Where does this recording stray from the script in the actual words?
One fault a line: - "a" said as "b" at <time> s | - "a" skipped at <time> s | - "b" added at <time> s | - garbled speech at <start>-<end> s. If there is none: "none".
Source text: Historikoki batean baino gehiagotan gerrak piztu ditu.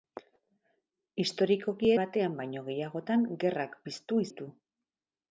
none